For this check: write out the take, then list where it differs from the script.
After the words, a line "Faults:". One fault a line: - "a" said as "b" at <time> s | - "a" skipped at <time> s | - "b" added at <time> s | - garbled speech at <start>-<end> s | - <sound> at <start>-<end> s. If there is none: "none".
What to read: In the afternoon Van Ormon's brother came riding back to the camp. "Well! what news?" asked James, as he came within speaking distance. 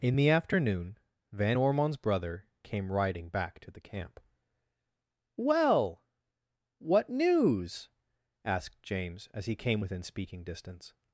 In the afternoon Van Ormon's brother came riding back to the camp. "Well! what news?" asked James, as he came within speaking distance.
Faults:
none